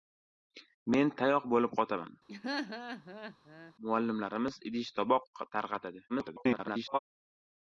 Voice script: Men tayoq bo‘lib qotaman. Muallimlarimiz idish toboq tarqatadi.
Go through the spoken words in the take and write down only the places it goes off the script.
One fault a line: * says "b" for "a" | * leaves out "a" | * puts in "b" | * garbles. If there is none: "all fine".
* garbles